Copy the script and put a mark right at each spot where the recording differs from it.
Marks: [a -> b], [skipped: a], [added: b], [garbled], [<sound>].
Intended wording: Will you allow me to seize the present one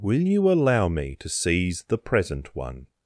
Will you allow me to seize the present one